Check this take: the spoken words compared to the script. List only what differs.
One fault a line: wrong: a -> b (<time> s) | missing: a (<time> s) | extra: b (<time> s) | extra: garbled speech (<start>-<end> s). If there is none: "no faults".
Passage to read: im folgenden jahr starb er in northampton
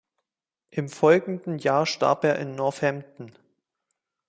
no faults